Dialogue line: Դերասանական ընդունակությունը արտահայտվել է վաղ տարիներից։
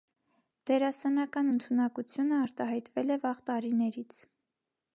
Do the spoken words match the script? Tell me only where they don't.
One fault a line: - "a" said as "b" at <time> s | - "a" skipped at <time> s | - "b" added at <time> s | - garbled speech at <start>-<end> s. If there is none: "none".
none